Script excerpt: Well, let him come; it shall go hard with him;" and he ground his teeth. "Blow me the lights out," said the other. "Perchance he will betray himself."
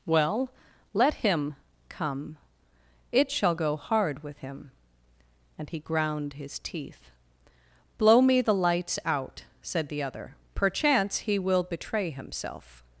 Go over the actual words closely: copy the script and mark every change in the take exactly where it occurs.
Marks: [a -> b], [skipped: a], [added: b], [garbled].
Well, let him come; it shall go hard with him;" and he ground his teeth. "Blow me the lights out," said the other. "Perchance he will betray himself."